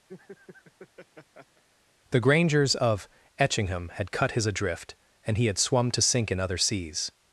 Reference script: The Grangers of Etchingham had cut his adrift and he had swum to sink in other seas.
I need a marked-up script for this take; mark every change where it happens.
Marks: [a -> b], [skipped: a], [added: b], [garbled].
The Grangers of Etchingham had cut his adrift and he had swum to sink in other seas.